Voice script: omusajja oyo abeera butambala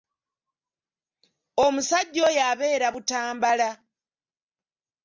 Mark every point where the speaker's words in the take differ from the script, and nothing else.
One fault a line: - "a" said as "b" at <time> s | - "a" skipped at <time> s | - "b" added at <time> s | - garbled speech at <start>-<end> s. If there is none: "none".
none